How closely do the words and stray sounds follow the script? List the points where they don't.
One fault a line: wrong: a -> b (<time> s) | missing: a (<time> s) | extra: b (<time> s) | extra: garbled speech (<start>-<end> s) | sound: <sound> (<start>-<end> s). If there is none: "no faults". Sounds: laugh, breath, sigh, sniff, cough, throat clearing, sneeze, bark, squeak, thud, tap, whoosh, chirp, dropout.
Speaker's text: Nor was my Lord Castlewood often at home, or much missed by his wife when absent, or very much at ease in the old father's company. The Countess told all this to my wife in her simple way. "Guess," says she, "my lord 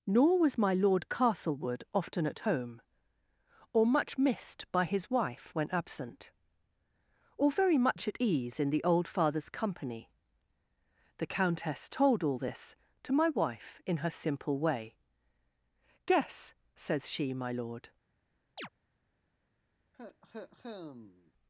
sound: chirp (18.6-18.7 s)
sound: cough (19.9-21.3 s)